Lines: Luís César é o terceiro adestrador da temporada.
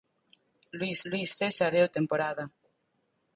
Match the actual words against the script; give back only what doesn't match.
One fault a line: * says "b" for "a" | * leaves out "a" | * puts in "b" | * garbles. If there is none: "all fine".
* puts in "luís"
* leaves out "terceiro adestrador da"